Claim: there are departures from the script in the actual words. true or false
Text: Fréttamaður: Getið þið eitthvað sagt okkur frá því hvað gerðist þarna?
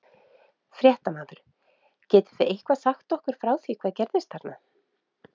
false